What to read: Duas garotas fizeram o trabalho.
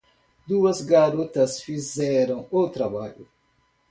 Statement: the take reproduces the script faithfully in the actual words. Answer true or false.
true